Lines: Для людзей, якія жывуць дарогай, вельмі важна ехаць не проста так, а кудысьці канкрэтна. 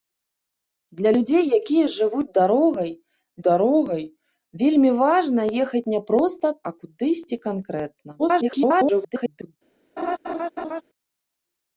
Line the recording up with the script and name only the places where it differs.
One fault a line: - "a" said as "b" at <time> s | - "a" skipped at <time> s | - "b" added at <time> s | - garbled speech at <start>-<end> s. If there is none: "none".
- "дарогай" added at 3.5 s
- "так" skipped at 6.5 s
- garbled speech at 8.2-9.5 s